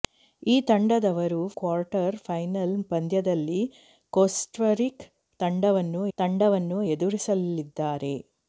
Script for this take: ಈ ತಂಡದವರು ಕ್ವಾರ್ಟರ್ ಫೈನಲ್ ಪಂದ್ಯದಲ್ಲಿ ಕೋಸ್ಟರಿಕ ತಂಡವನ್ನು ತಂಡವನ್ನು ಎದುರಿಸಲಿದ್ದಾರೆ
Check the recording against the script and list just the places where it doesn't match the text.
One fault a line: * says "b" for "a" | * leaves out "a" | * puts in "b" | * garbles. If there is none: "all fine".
all fine